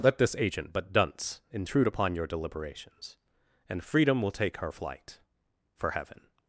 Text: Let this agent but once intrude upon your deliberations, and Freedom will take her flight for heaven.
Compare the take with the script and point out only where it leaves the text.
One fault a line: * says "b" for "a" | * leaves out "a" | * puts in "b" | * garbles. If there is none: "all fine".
* says "dunce" for "once"